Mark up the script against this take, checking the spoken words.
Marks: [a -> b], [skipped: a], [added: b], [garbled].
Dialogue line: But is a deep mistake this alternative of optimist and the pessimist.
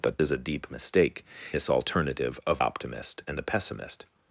But is a deep mistake this alternative of optimist and the pessimist.